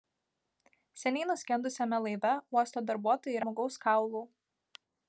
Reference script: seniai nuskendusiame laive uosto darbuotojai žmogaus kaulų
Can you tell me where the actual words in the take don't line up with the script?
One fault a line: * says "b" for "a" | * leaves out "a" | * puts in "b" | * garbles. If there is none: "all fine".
all fine